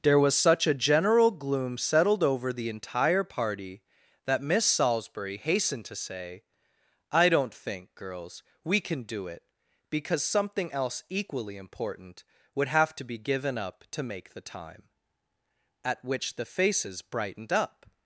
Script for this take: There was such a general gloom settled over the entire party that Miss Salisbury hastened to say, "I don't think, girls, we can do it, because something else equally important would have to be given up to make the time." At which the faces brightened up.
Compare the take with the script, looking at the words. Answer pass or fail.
pass